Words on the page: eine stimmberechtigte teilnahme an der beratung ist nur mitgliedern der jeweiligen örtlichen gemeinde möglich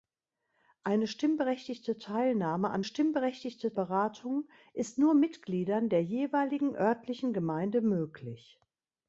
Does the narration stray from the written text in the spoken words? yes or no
yes